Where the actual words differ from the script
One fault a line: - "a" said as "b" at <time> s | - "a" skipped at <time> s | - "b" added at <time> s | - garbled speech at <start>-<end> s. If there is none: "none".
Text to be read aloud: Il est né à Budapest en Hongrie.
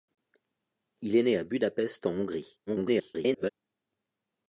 - garbled speech at 2.7-3.5 s